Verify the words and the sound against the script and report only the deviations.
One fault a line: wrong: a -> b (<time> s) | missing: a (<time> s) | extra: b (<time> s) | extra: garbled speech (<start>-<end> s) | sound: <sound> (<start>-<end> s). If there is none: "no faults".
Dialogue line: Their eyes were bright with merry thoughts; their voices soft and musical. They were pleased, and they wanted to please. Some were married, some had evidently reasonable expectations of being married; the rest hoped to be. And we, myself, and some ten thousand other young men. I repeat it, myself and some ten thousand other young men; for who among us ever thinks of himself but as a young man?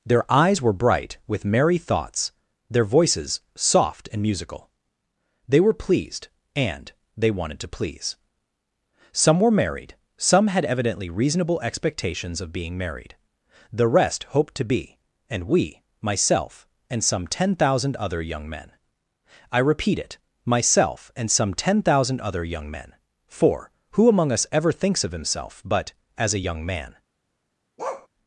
sound: bark (27.8-28.1 s)